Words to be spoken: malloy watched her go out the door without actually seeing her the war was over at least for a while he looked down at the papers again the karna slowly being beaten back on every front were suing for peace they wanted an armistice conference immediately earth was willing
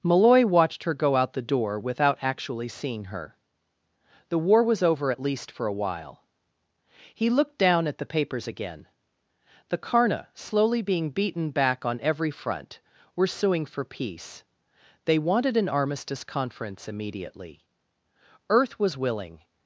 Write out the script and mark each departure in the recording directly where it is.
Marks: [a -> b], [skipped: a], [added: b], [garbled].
malloy watched her go out the door without actually seeing her the war was over at least for a while he looked down at the papers again the karna slowly being beaten back on every front were suing for peace they wanted an armistice conference immediately earth was willing